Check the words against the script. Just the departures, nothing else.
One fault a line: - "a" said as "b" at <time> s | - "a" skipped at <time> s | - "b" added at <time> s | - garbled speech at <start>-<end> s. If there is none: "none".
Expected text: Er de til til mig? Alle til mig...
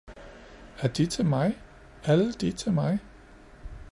- "til" skipped at 1.2 s
- "de" added at 2.3 s